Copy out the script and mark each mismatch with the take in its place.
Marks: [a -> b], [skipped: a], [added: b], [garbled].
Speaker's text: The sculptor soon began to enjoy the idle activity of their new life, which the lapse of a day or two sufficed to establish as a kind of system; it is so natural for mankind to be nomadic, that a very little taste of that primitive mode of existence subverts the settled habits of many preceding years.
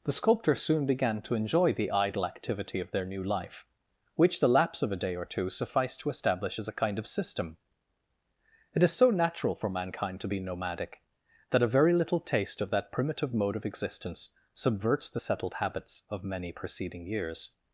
The sculptor soon began to enjoy the idle activity of their new life, which the lapse of a day or two sufficed to establish as a kind of system; it is so natural for mankind to be nomadic, that a very little taste of that primitive mode of existence subverts the settled habits of many preceding years.